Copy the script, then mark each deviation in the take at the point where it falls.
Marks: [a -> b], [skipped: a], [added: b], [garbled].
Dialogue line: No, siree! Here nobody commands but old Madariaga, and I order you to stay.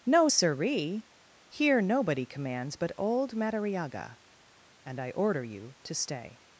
No, siree! Here nobody commands but old Madariaga, and I order you to stay.